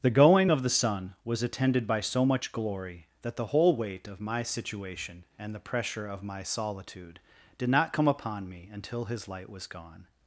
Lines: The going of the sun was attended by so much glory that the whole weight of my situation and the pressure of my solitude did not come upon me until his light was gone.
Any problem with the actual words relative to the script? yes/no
no